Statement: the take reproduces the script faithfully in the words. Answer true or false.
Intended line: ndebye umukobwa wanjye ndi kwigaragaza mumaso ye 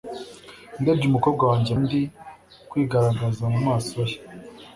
true